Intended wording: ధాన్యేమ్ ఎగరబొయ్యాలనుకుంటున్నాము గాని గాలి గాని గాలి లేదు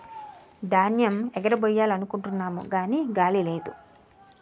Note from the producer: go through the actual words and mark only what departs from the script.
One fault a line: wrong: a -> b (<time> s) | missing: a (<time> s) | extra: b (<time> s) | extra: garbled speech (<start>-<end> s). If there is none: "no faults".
missing: గాని గాలి (3.4 s)